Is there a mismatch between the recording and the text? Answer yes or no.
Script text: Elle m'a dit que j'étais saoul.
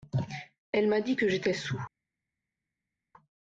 no